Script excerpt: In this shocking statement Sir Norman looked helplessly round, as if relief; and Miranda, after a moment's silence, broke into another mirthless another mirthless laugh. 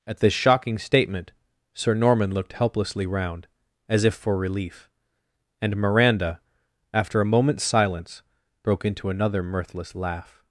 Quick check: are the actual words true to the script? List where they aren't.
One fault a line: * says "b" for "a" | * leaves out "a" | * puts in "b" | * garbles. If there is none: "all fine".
* says "At" for "In"
* puts in "for"
* leaves out "another mirthless"